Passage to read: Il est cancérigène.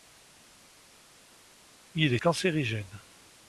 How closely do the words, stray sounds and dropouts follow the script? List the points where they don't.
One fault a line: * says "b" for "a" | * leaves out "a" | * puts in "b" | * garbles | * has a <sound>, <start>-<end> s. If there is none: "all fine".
all fine